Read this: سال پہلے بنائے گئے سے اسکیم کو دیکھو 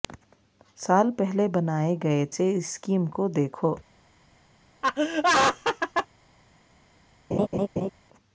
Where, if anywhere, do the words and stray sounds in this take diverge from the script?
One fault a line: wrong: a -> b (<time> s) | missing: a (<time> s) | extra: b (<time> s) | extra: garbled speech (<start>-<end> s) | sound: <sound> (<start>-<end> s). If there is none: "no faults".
sound: laugh (4.8-6.1 s)
sound: laugh (7.3-7.9 s)